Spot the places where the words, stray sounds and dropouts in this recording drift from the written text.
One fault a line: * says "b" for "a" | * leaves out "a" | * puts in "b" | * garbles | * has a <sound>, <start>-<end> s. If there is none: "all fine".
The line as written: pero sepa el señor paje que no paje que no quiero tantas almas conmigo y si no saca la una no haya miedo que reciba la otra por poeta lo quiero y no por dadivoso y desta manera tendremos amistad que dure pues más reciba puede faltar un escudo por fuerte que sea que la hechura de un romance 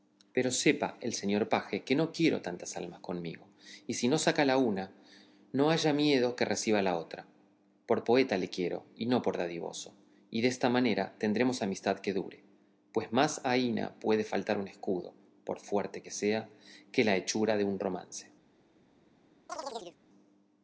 * leaves out "paje que no"
* says "le" for "lo"
* says "aína" for "reciba"
* has a chirp, 19.5-20.0 s